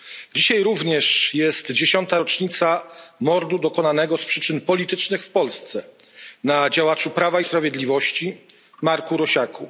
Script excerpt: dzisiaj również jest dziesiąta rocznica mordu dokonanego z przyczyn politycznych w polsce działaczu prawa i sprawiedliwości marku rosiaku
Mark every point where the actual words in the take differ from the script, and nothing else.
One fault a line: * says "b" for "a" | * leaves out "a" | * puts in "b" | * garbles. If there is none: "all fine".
* puts in "na"